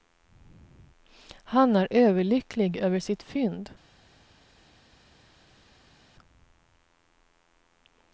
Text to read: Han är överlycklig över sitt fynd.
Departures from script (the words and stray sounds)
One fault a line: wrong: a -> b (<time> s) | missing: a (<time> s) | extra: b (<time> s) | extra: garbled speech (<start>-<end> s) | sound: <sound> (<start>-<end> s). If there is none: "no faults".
no faults